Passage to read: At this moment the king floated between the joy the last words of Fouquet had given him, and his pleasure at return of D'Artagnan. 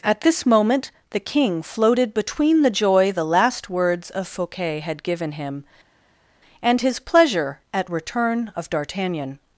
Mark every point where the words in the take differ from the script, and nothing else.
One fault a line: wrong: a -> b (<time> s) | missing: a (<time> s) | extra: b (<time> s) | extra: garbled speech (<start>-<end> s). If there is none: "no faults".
no faults